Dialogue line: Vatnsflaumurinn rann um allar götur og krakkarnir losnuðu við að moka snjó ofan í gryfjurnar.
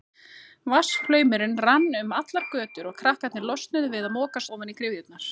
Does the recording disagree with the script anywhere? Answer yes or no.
yes